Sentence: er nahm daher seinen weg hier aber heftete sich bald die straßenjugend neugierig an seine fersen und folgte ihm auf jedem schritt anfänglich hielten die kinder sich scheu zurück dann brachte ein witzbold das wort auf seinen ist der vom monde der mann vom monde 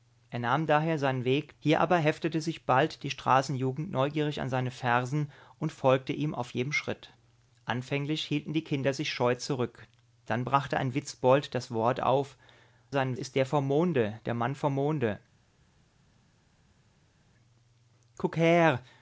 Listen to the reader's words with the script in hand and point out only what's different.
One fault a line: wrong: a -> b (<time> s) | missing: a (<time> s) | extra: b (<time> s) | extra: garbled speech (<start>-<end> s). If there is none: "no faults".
no faults